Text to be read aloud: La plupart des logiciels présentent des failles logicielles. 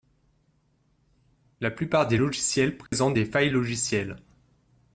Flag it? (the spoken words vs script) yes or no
no